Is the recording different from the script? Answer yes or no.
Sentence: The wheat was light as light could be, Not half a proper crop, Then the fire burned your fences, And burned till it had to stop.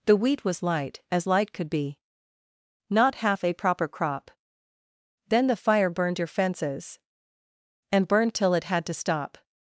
no